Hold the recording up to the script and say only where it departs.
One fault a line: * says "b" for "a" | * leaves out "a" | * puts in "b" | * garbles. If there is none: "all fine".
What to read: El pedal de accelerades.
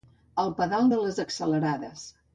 * puts in "les"